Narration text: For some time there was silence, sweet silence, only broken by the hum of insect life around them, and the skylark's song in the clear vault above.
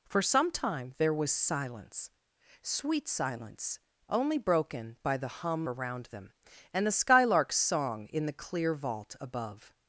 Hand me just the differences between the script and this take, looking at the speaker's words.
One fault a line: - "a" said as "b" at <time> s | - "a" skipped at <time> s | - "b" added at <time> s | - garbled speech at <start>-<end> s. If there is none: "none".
- "of insect life" skipped at 5.7 s